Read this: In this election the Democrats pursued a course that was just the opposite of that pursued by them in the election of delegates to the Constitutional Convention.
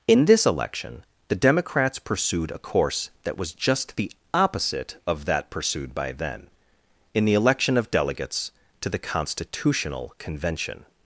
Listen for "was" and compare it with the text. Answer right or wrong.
right